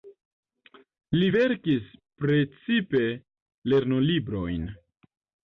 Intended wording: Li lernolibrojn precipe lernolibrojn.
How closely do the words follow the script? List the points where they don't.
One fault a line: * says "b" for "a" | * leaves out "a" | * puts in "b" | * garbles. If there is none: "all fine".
* says "verkis" for "lernolibrojn"